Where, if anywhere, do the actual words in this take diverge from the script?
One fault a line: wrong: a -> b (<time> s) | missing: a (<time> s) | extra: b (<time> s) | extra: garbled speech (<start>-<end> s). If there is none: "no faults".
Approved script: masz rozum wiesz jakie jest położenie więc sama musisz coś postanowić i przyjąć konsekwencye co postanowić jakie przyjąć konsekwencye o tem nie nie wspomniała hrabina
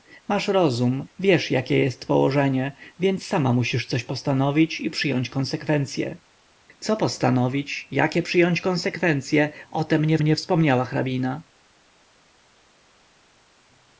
no faults